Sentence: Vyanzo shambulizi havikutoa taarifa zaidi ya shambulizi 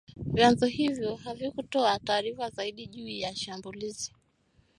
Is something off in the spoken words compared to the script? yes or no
yes